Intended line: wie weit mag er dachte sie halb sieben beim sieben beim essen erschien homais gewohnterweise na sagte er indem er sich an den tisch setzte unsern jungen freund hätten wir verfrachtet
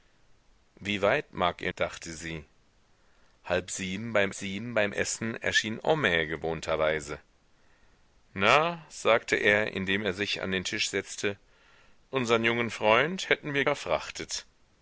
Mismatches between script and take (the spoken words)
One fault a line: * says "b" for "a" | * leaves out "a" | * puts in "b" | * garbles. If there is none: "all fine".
all fine